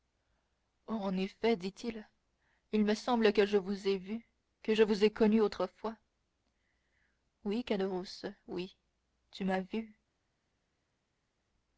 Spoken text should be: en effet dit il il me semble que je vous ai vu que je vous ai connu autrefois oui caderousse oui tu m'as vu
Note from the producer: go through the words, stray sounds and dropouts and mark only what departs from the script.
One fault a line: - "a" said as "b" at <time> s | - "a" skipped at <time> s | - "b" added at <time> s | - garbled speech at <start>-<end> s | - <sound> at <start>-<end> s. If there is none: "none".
none